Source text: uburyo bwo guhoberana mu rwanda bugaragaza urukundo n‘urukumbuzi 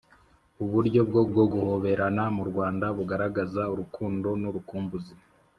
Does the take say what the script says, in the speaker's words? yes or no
no